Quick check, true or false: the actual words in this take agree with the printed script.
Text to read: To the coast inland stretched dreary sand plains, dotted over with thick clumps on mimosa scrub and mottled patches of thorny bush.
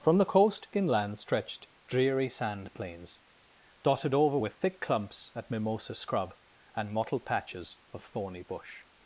false